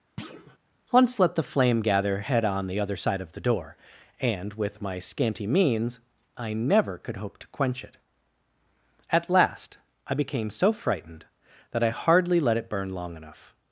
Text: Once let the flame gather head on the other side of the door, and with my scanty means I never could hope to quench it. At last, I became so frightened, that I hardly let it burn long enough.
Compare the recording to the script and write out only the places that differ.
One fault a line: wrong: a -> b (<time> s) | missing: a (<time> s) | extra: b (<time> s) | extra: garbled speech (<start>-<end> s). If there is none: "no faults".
no faults